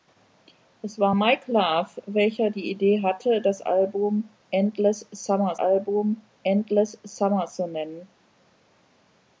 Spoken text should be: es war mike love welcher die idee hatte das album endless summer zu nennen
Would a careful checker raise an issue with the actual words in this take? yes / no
yes